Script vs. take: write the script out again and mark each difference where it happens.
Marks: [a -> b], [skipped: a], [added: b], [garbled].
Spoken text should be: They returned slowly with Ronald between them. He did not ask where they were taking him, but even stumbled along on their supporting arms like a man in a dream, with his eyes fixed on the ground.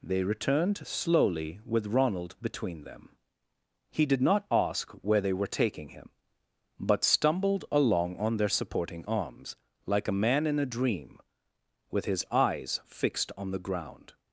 They returned slowly with Ronald between them. He did not ask where they were taking him, but [skipped: even] stumbled along on their supporting arms like a man in a dream, with his eyes fixed on the ground.